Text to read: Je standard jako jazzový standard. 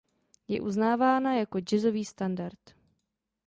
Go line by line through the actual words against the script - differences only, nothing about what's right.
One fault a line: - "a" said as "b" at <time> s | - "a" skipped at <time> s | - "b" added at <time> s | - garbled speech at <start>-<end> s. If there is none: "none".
- "standard" said as "uznávána" at 0.6 s